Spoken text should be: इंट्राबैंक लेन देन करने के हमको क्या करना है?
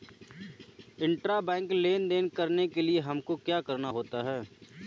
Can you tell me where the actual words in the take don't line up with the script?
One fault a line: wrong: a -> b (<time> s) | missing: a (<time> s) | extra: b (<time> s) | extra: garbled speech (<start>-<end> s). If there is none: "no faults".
extra: लिए (2.8 s)
extra: होता (3.9 s)